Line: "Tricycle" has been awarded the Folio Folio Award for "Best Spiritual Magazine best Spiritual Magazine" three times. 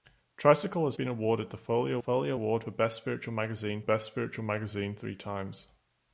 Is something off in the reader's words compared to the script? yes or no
no